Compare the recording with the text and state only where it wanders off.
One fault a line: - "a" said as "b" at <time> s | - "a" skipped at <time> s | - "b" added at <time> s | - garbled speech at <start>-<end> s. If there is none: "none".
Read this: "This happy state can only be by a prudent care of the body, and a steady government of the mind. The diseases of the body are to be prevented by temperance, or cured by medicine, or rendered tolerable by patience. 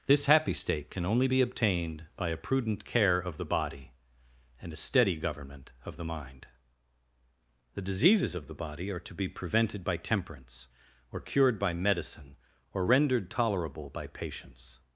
- "obtained" added at 1.4 s